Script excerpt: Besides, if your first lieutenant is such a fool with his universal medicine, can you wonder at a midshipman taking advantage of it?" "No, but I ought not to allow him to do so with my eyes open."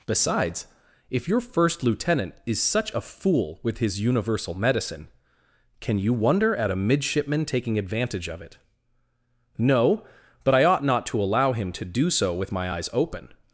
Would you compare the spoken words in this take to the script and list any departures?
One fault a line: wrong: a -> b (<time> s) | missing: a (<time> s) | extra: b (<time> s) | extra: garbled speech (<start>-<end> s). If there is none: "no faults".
no faults